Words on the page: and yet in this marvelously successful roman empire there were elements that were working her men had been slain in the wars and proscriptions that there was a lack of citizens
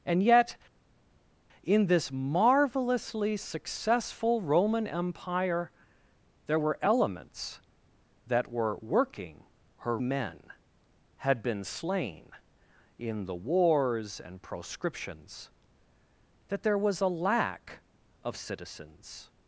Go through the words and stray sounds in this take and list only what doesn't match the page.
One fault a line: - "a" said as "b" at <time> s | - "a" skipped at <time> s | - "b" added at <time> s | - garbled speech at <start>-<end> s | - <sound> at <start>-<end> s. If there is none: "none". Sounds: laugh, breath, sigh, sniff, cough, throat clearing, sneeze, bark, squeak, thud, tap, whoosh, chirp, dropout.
none